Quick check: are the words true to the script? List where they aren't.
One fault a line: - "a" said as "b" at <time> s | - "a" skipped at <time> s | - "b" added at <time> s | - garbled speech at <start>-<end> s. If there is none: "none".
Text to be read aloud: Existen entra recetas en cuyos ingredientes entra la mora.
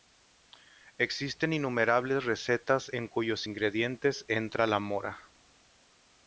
- "entra" said as "innumerables" at 1.5 s